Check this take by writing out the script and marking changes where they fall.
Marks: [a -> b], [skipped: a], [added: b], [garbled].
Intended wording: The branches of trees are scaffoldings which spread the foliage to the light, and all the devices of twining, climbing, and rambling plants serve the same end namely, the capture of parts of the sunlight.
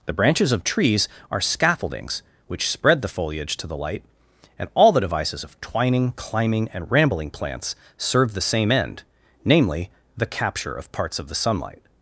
The branches of trees are scaffoldings which spread the foliage to the light, and all the devices of twining, climbing, and rambling plants serve the same end namely, the capture of parts of the sunlight.